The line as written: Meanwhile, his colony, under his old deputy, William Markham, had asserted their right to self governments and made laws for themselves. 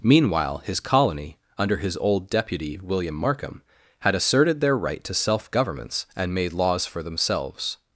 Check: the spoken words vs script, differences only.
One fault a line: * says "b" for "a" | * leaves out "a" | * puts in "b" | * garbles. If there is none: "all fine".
all fine